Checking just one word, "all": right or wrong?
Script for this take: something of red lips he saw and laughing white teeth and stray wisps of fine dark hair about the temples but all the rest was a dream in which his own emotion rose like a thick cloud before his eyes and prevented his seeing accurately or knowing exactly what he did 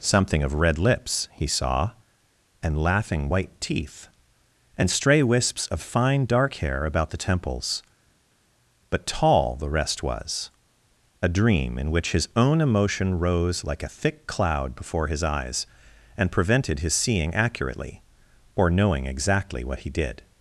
wrong